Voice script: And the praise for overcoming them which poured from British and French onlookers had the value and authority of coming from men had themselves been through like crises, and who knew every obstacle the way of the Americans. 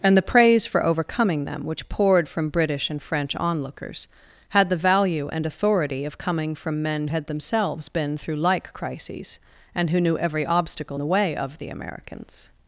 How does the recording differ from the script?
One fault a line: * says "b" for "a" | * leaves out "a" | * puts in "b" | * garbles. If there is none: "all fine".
all fine